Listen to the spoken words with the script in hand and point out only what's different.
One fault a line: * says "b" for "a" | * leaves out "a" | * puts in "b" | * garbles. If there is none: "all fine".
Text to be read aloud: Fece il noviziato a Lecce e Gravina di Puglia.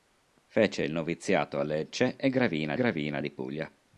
* puts in "Gravina"